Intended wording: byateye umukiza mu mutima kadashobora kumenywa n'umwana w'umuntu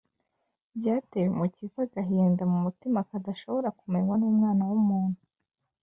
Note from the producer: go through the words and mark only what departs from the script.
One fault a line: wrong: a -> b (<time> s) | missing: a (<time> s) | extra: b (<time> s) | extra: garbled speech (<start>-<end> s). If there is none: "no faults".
extra: agahinda (1.9 s)